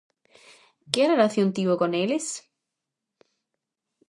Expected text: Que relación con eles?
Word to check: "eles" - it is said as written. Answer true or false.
true